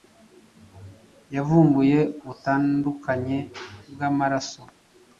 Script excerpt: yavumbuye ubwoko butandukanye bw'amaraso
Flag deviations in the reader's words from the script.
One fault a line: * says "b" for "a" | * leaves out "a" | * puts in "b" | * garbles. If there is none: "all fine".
* leaves out "ubwoko"